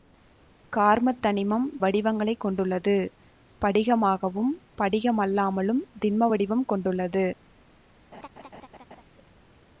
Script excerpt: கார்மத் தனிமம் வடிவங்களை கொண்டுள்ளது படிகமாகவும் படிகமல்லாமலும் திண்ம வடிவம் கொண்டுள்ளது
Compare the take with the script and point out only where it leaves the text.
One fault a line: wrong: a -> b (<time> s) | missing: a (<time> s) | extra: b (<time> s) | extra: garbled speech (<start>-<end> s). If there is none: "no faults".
no faults